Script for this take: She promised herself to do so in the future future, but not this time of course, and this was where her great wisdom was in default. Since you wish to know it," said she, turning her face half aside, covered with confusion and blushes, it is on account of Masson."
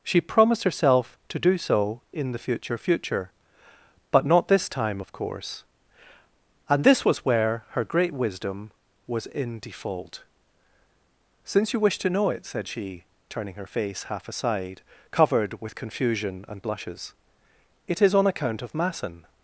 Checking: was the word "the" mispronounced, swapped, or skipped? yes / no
no